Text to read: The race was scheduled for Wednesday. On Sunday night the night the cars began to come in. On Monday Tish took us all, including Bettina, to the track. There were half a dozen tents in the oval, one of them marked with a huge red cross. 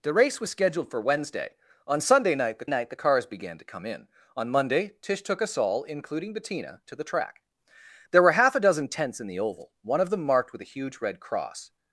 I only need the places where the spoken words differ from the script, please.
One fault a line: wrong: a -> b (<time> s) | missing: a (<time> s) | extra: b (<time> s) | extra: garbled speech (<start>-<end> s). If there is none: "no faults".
no faults